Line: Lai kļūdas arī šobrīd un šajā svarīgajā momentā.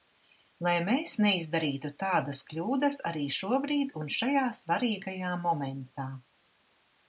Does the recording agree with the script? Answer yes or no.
no